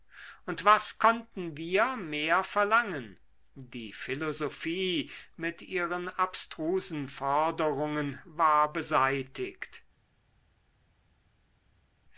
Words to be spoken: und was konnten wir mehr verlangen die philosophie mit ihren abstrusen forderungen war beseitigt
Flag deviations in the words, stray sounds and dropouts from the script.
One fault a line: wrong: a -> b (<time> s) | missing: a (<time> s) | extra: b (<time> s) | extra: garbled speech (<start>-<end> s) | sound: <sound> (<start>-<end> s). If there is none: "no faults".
no faults